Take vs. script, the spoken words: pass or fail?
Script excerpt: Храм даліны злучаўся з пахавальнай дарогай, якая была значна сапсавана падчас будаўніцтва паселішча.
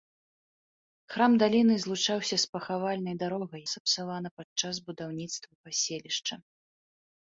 fail